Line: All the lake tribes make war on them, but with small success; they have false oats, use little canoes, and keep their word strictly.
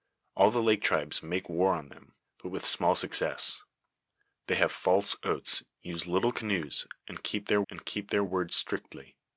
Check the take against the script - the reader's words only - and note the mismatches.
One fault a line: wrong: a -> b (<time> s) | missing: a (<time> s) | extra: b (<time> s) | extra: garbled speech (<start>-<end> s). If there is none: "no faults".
extra: and keep their (7.7 s)